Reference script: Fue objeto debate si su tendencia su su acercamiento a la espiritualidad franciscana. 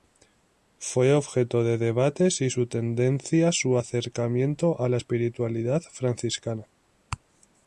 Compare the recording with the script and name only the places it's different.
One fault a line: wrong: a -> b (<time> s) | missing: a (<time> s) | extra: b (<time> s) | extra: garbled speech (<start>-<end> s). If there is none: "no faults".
extra: de (1.6 s)
missing: su (3.8 s)